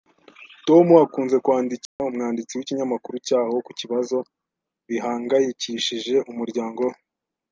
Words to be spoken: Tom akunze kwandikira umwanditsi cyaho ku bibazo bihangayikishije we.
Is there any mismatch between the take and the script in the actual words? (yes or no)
yes